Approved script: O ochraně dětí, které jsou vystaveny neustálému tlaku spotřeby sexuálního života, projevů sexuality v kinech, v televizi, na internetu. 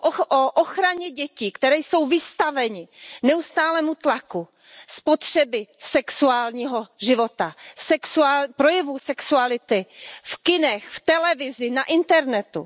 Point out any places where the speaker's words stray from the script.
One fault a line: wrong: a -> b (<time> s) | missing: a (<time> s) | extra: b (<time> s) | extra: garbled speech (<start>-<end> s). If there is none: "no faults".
no faults